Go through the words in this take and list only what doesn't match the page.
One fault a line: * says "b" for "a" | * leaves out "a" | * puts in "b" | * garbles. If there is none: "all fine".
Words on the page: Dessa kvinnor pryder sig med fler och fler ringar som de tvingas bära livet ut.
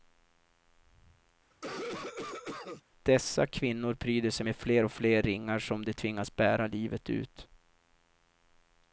all fine